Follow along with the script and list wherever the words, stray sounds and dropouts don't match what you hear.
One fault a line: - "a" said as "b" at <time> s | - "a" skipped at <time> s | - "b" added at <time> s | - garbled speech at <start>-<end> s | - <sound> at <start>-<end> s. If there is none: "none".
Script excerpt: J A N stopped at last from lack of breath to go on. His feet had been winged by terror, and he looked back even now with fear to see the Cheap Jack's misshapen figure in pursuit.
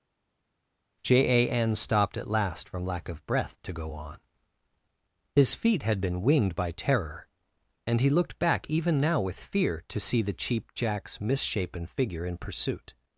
none